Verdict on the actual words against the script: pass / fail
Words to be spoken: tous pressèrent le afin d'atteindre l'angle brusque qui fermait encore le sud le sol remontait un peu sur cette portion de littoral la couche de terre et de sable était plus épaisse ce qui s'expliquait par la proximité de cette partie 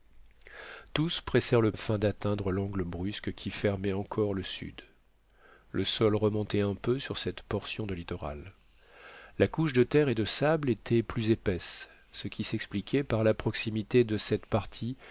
pass